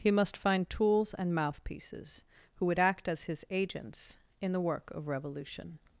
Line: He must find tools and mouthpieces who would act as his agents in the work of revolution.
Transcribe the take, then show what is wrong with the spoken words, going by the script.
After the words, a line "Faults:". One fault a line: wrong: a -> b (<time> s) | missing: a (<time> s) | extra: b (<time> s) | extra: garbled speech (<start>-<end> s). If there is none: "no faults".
He must find tools and mouthpieces who would act as his agents in the work of revolution.
Faults:
no faults